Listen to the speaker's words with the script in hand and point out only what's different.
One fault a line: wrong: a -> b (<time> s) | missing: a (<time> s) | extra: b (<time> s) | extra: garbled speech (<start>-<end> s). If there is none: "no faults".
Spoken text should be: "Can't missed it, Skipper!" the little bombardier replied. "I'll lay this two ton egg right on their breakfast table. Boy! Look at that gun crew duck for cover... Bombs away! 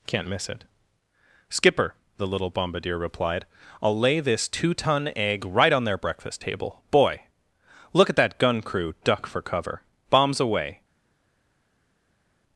wrong: missed -> miss (0.3 s)